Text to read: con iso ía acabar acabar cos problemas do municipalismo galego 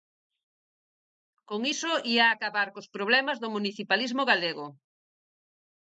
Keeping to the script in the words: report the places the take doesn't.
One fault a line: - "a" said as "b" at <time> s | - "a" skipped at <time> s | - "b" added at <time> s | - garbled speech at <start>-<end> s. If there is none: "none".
- "acabar" skipped at 2.7 s